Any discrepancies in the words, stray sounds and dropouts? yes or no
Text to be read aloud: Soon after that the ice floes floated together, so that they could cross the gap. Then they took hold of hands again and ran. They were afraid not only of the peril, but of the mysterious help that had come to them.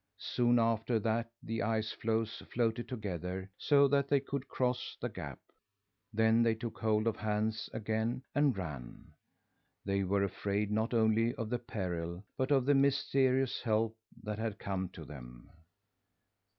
no